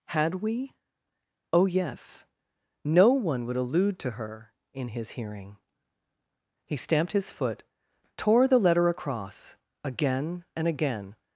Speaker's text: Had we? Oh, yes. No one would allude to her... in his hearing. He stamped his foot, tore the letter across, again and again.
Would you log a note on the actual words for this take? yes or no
no